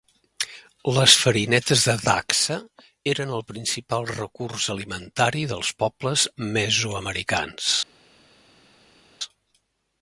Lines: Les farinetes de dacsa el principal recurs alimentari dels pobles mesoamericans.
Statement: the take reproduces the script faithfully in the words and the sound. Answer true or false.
false